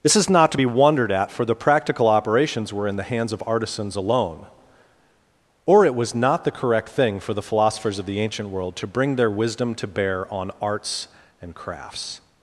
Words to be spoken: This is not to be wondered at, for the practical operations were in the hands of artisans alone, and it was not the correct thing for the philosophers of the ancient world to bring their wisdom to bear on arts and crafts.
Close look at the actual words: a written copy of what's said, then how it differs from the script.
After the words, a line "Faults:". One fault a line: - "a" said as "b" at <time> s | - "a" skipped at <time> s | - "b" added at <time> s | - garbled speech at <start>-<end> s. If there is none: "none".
This is not to be wondered at, for the practical operations were in the hands of artisans alone, or it was not the correct thing for the philosophers of the ancient world to bring their wisdom to bear on arts and crafts.
Faults:
- "and" said as "or" at 5.7 s